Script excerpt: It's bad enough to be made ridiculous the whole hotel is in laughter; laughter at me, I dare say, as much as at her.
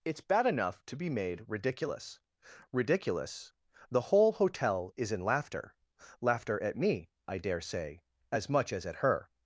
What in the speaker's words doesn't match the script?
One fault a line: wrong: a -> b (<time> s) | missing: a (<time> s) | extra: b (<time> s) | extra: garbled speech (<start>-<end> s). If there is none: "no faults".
extra: ridiculous (2.7 s)